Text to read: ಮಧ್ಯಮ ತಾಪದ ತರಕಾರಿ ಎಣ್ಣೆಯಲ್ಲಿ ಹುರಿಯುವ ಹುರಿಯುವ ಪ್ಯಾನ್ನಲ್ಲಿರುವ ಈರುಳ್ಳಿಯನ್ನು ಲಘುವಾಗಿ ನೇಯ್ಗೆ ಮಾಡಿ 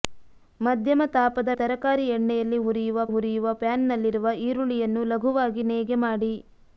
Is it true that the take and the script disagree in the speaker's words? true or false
false